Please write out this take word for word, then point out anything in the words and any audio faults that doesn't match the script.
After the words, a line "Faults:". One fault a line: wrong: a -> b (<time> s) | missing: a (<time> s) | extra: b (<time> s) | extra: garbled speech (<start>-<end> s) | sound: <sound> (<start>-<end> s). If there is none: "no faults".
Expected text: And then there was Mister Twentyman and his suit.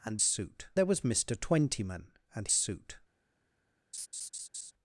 And suit there was Mister Twentyman and suit.
Faults:
wrong: then -> suit (0.2 s)
missing: his (2.5 s)
sound: laugh (3.9-4.7 s)